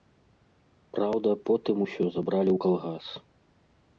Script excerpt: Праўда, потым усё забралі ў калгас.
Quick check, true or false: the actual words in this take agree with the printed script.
true